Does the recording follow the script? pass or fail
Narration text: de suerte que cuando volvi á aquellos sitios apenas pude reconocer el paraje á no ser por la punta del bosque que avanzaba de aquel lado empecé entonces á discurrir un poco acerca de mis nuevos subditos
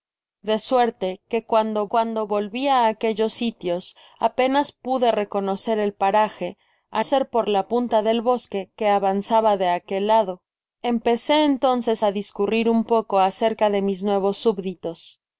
fail